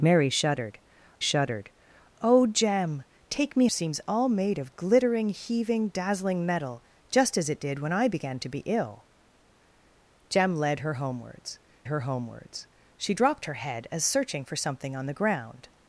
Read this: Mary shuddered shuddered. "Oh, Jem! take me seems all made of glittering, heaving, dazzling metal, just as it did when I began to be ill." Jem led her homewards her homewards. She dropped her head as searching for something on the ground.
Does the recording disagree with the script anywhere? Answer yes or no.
no